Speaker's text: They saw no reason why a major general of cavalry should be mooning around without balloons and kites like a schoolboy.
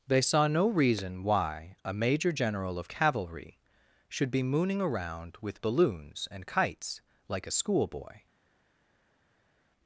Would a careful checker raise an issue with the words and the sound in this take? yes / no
yes